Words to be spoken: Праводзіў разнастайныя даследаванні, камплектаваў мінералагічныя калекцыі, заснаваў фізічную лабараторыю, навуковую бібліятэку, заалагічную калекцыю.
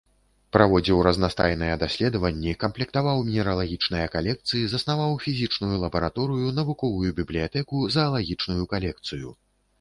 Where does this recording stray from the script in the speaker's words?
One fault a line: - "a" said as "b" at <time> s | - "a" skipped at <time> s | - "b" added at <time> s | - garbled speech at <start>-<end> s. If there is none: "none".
none